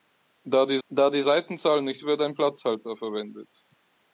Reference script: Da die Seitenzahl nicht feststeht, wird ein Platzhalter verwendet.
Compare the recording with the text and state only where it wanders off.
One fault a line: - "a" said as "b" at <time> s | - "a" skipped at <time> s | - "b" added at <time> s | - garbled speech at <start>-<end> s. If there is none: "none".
- "da die" added at 0.9 s
- "feststeht" skipped at 2.0 s